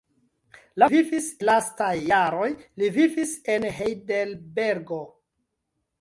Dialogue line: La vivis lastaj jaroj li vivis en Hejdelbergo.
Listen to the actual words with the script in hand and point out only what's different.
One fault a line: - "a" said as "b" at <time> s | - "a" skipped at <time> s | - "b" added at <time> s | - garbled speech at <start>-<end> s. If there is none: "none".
none